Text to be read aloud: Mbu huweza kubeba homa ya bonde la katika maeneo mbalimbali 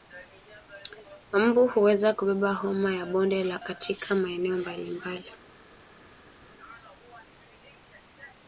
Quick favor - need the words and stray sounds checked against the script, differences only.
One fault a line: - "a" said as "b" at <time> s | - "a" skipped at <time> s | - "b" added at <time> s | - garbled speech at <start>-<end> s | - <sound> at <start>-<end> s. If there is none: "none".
none